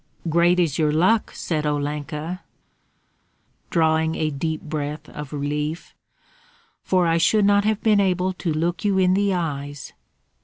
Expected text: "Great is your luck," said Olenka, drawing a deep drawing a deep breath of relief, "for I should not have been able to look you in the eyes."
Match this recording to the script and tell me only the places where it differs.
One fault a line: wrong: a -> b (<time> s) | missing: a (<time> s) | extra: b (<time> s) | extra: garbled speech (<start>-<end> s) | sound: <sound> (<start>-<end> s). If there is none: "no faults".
missing: drawing a deep (4.6 s)